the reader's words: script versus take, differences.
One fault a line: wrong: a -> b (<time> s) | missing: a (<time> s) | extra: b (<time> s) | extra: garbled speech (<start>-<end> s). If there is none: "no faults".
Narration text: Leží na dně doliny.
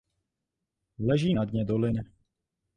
no faults